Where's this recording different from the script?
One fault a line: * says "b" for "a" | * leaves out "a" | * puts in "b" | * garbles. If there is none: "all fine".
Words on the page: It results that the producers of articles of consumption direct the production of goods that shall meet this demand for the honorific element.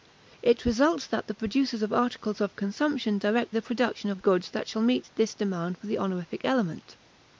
all fine